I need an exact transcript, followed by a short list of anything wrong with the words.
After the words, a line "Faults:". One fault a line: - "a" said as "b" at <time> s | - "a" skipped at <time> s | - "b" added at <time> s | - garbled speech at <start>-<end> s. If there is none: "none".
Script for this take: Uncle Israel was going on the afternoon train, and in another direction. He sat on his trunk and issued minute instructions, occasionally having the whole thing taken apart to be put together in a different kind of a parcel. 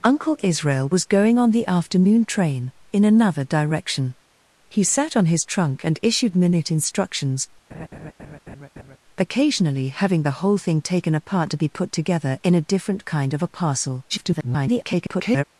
Uncle Israel was going on the afternoon train, in another direction. He sat on his trunk and issued minute instructions, occasionally having the whole thing taken apart to be put together in a different kind of a parcel. [garbled]
Faults:
- "and" skipped at 2.7 s
- garbled speech at 14.1-15.4 s